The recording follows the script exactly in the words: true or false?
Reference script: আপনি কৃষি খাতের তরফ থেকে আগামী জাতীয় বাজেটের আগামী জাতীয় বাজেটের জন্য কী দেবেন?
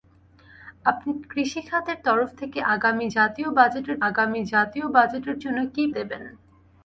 true